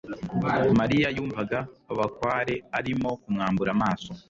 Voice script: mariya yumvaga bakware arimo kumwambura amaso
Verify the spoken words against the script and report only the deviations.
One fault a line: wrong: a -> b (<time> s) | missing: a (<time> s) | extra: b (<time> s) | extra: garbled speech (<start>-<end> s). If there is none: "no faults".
no faults